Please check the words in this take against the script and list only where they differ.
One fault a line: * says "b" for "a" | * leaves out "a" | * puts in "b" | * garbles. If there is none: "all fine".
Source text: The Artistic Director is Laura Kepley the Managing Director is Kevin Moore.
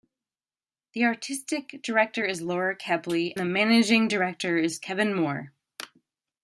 all fine